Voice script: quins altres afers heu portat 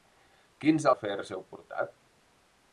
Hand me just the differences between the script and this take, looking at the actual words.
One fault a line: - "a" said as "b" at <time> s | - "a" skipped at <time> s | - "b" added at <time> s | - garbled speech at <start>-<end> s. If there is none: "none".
- "altres" skipped at 0.9 s